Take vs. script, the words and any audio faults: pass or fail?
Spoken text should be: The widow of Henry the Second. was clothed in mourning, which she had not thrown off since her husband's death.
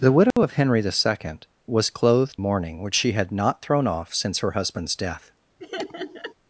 fail